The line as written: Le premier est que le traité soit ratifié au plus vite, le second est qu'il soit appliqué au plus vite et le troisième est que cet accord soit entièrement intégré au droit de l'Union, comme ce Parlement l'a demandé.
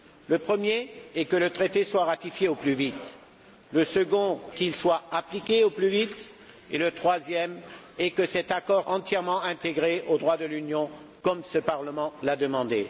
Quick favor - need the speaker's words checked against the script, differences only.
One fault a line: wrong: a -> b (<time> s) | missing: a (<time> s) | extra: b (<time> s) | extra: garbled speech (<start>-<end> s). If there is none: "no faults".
missing: est (4.4 s)
missing: soit (8.8 s)